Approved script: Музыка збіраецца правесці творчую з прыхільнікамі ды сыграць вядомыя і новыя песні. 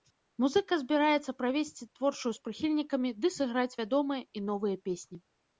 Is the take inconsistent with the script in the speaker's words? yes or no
no